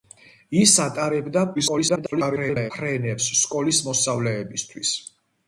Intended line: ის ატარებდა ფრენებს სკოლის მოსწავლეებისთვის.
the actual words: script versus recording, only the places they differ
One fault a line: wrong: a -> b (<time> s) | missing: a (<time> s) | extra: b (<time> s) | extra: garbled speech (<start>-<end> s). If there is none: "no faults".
extra: garbled speech (1.5-2.7 s)